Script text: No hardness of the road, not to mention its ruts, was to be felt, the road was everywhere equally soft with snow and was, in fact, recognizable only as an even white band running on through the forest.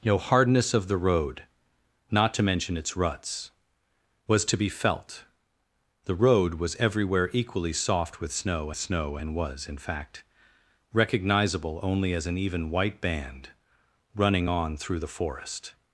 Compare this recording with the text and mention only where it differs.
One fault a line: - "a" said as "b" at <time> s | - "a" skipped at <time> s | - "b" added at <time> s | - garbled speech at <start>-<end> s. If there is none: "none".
- "snow" added at 8.7 s